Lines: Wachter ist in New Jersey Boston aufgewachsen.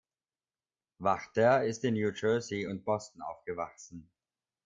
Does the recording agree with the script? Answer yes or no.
no